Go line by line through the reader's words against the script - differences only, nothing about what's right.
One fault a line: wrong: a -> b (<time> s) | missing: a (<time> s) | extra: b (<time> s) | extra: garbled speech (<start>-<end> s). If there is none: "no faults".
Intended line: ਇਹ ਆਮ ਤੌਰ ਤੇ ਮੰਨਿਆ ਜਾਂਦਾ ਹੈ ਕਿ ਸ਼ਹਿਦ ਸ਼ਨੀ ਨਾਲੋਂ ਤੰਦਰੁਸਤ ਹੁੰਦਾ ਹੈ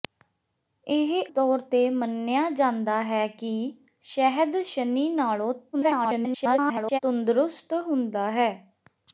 missing: ਆਮ (1.1 s)
extra: garbled speech (5.7-7.0 s)